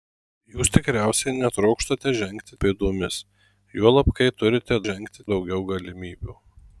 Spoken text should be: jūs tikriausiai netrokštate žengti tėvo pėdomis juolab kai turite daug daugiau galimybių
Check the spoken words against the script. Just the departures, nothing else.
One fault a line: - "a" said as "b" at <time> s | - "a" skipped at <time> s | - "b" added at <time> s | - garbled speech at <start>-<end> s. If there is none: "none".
- "tėvo" skipped at 2.6 s
- "daug" said as "žengti" at 4.9 s